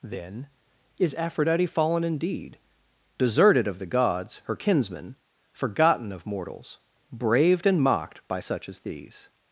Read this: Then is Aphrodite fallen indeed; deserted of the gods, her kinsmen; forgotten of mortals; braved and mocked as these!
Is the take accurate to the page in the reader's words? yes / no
no